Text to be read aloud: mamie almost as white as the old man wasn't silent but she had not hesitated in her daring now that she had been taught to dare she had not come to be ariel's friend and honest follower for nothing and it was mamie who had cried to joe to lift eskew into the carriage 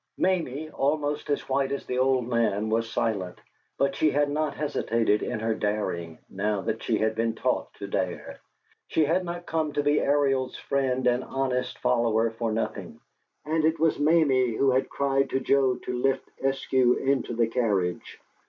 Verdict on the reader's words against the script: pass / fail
fail